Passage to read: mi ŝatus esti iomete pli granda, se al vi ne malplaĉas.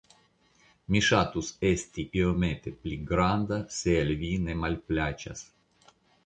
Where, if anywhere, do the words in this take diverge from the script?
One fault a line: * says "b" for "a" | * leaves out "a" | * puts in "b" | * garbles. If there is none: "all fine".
all fine